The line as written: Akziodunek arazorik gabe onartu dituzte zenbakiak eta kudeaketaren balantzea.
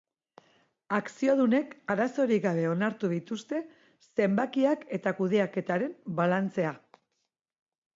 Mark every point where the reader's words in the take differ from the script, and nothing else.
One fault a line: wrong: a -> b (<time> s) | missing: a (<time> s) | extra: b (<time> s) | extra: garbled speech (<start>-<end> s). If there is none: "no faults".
no faults